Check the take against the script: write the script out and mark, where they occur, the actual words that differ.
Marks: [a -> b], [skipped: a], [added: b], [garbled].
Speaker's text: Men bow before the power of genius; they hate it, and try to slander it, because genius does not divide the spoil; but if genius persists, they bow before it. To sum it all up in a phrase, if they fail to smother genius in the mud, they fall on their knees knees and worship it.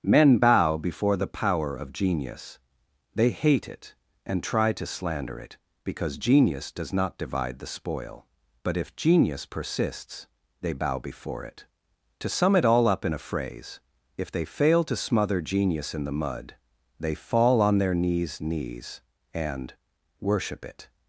Men bow before the power of genius; they hate it, and try to slander it, because genius does not divide the spoil; but if genius persists, they bow before it. To sum it all up in a phrase, if they fail to smother genius in the mud, they fall on their knees knees and worship it.